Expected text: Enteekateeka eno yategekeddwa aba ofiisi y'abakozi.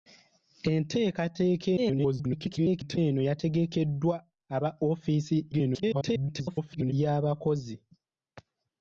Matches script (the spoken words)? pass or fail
fail